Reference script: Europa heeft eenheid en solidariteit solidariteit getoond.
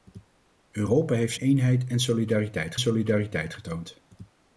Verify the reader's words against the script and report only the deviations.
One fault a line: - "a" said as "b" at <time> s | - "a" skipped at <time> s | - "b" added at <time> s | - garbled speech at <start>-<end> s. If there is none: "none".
none